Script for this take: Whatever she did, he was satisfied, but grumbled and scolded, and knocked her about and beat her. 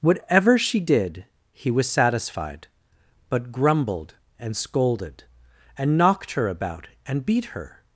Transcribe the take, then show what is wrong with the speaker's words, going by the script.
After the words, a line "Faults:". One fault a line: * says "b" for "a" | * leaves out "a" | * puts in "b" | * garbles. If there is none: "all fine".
Whatever she did, he was satisfied, but grumbled and scolded, and knocked her about and beat her.
Faults:
all fine